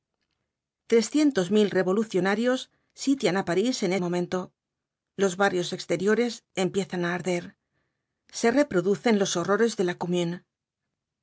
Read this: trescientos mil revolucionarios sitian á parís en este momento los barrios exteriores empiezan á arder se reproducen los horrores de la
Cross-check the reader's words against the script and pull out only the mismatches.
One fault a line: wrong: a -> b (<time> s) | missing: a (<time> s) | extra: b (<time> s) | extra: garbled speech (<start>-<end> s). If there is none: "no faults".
missing: este (3.9 s)